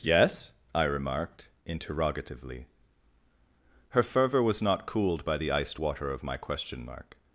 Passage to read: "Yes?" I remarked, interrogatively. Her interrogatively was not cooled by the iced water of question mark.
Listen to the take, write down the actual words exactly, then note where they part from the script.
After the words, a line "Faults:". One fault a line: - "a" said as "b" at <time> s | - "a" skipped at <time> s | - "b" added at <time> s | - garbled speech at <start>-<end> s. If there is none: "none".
"Yes?" I remarked, interrogatively. Her fervor was not cooled by the iced water of my question mark.
Faults:
- "interrogatively" said as "fervor" at 4.0 s
- "my" added at 6.2 s